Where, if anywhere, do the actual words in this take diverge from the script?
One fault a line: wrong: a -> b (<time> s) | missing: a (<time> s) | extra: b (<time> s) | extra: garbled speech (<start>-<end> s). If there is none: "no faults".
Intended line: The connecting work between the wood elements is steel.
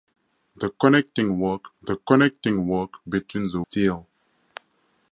wrong: between the wood elements is -> the connecting work between the (1.8 s)